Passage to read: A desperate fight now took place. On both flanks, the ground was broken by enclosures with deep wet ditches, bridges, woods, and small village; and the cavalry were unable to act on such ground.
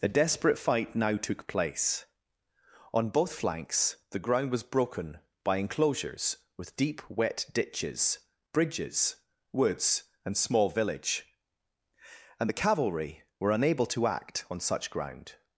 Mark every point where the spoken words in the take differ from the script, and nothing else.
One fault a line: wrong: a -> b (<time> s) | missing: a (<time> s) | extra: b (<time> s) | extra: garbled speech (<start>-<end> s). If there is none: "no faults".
no faults